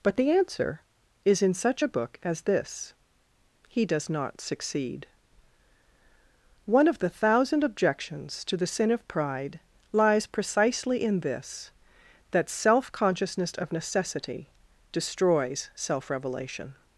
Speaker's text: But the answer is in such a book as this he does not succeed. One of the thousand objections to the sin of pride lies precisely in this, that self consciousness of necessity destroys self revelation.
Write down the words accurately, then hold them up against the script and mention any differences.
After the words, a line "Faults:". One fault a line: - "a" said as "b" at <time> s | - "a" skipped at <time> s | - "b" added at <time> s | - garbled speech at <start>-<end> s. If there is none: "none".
But the answer is in such a book as this he does not succeed. One of the thousand objections to the sin of pride lies precisely in this, that self consciousness of necessity destroys self revelation.
Faults:
none